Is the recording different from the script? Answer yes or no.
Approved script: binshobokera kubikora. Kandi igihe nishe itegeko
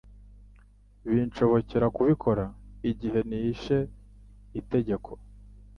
yes